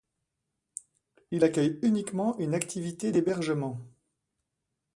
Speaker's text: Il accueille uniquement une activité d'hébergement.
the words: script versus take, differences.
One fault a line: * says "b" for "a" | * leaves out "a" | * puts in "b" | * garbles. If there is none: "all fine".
all fine